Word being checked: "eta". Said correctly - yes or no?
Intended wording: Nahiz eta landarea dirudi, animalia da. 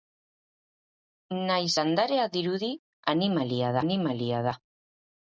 no